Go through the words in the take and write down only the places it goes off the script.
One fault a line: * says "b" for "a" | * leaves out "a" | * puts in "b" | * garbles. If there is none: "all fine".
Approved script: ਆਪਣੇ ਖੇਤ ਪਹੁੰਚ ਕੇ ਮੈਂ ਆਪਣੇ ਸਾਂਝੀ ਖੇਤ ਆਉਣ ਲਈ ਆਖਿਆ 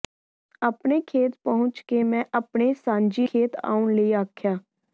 all fine